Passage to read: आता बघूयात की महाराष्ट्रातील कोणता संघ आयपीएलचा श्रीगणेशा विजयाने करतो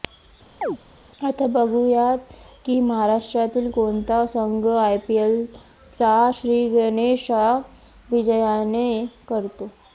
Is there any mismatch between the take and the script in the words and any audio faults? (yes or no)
yes